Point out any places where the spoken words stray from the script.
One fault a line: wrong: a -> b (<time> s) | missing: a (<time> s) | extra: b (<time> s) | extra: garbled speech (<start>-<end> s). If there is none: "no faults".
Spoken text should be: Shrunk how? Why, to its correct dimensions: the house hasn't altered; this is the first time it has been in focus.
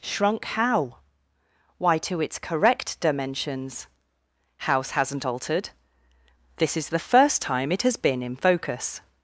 missing: the (3.9 s)